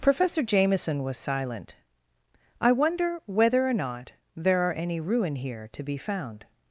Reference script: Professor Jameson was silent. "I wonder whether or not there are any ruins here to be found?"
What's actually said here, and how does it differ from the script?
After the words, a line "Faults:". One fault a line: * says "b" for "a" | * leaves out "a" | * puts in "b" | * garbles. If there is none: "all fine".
Professor Jameson was silent. "I wonder whether or not there are any ruin here to be found?"
Faults:
* says "ruin" for "ruins"